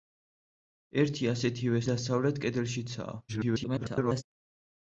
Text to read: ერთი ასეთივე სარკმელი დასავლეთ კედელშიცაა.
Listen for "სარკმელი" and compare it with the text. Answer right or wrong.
wrong